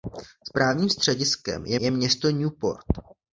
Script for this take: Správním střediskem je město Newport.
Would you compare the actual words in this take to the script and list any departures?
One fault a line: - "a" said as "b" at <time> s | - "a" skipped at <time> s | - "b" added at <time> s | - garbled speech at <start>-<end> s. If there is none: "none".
- "je" added at 1.8 s